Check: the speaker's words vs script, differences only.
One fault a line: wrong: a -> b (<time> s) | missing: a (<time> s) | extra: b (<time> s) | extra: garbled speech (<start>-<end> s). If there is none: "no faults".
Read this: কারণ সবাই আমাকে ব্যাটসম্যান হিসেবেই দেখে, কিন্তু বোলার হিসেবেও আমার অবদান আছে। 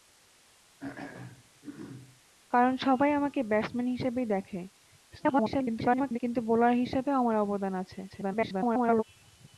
extra: garbled speech (5.1-6.2 s)
extra: garbled speech (8.1-9.0 s)